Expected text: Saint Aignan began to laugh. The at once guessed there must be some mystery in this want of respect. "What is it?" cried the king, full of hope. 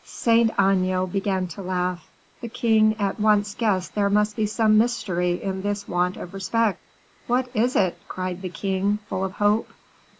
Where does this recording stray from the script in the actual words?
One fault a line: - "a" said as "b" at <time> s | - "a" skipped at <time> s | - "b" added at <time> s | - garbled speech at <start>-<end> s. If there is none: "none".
- "king" added at 2.5 s